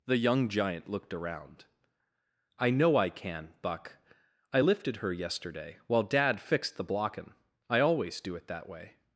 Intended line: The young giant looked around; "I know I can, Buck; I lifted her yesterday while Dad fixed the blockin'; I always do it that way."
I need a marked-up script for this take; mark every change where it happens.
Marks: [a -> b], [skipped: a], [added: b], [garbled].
The young giant looked around; "I know I can, Buck; I lifted her yesterday while Dad fixed the blockin'; I always do it that way."